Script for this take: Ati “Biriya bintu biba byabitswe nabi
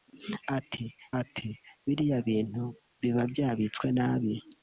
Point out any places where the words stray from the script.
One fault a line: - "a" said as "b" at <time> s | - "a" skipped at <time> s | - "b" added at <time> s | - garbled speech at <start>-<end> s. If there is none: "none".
- "ati" added at 1.2 s